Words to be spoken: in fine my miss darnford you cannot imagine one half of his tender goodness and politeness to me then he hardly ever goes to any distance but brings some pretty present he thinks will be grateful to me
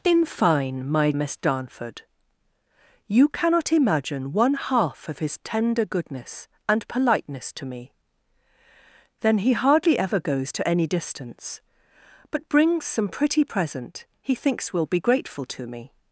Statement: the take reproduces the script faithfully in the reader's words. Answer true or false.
true